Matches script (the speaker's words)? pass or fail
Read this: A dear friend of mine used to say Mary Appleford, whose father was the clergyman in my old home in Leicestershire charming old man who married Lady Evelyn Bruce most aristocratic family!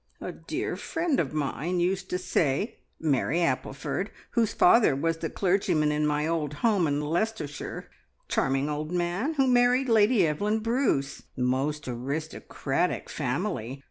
pass